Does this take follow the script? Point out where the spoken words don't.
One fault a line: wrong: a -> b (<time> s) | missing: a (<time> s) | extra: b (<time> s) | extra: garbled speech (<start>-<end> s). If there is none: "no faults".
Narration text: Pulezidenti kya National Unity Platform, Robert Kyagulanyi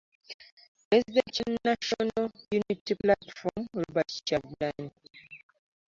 no faults